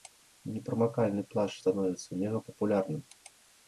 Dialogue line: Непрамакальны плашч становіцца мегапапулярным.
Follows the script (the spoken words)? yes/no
yes